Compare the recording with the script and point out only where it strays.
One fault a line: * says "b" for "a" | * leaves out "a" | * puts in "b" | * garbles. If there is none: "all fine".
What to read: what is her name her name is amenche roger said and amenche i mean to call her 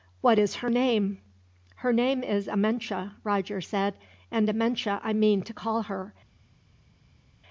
all fine